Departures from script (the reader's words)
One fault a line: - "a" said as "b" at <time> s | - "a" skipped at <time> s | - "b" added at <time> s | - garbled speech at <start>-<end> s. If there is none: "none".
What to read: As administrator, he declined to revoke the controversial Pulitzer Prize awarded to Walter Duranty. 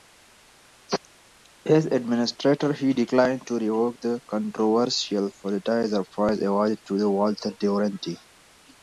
none